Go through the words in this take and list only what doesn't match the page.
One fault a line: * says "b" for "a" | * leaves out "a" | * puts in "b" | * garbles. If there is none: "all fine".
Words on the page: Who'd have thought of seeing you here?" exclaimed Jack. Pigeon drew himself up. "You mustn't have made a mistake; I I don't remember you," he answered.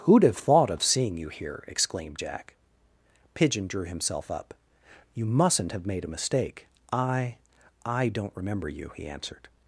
all fine